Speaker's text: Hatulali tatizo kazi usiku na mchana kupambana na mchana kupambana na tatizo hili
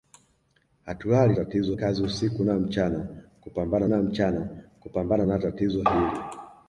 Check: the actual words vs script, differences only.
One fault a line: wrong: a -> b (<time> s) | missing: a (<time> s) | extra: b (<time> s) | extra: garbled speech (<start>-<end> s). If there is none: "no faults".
no faults